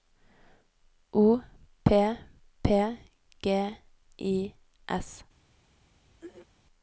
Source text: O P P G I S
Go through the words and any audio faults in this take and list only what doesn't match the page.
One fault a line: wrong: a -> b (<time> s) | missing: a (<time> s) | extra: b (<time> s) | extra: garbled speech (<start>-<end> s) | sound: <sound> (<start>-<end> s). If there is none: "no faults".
sound: throat clearing (6.2-6.5 s)